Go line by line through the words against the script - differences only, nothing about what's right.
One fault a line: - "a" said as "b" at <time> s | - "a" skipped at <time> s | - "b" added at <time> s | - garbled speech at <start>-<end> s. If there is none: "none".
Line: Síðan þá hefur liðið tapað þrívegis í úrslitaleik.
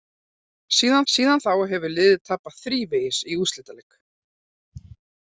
- "síðan" added at 1.1 s